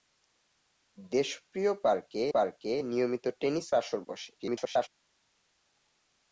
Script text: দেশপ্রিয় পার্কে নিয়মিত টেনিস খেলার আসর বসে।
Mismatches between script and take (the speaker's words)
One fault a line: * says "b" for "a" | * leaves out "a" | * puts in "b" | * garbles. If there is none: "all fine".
* puts in "পার্কে"
* leaves out "খেলার"
* garbles